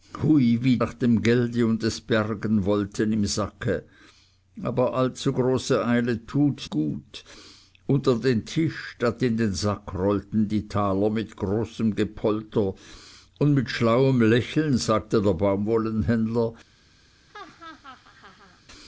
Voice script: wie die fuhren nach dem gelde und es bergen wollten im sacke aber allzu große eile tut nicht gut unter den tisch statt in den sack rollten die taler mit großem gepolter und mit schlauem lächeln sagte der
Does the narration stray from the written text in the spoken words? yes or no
yes